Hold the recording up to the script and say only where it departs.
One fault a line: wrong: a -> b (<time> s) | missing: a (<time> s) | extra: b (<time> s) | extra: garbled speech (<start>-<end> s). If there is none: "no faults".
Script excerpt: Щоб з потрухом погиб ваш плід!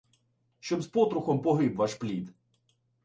no faults